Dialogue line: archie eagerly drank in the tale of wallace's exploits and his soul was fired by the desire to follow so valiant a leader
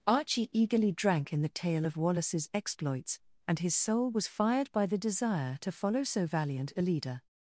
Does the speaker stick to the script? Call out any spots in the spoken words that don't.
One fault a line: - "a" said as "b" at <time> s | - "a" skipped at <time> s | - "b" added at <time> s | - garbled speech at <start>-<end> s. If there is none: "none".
none